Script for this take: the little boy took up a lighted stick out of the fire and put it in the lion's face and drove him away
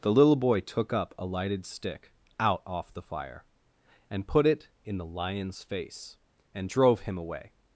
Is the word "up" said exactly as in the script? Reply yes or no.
yes